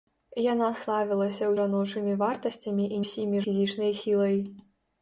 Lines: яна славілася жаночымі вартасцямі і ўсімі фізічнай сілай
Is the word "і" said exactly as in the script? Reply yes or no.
yes